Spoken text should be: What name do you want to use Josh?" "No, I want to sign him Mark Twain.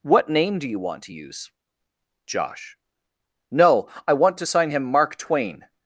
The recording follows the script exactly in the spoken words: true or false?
true